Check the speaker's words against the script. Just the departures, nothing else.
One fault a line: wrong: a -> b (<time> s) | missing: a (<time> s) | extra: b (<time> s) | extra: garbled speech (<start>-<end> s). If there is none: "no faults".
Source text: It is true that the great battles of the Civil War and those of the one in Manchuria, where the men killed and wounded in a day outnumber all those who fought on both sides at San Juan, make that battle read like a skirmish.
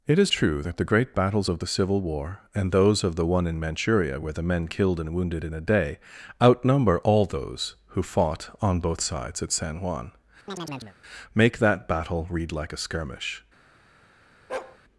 no faults